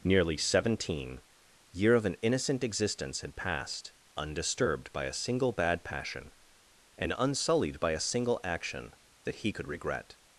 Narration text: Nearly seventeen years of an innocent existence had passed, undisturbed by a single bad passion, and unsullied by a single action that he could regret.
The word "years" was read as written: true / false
false